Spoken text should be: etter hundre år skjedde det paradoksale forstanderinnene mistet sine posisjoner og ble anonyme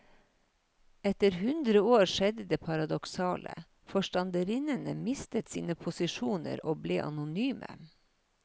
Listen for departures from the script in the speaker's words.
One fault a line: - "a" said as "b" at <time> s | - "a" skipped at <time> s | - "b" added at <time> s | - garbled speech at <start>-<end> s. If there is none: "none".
none